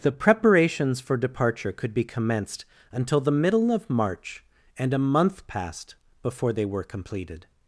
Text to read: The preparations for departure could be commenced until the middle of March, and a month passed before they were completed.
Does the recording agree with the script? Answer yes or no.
yes